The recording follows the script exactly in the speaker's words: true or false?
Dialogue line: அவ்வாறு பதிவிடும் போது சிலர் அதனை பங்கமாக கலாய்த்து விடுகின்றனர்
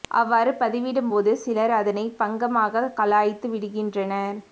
true